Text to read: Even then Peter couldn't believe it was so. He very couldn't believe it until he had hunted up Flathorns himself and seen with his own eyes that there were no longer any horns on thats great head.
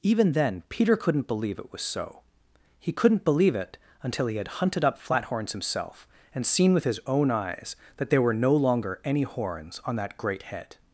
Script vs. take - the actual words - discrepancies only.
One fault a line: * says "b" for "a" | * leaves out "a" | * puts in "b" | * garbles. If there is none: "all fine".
* leaves out "very"
* says "that" for "thats"